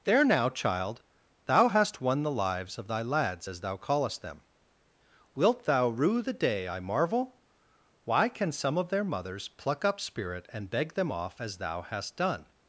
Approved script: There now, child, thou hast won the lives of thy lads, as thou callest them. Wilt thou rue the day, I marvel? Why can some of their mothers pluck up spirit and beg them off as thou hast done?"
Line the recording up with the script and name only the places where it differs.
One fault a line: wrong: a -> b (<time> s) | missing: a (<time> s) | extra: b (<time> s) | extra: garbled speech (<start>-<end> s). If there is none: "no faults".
no faults